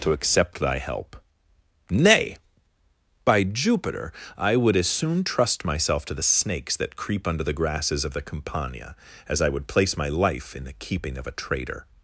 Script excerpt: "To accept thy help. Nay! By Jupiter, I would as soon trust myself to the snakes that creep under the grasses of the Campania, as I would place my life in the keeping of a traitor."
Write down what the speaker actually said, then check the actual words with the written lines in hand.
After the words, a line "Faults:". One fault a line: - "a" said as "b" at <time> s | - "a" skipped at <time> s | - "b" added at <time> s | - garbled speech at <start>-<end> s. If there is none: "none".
"To accept thy help. Nay! By Jupiter, I would as soon trust myself to the snakes that creep under the grasses of the Campania, as I would place my life in the keeping of a traitor."
Faults:
none